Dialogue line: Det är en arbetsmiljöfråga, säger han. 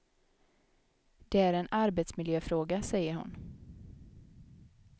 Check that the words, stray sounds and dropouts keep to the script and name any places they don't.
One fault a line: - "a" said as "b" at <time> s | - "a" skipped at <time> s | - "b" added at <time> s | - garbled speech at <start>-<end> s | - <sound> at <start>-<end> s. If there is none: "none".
- "han" said as "hon" at 3.1 s